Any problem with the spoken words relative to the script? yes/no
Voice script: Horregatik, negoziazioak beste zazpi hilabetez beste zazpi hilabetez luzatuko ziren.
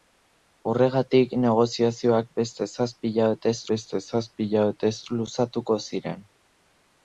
no